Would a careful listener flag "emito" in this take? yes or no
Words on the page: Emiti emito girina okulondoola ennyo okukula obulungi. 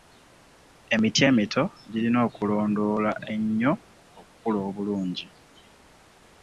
no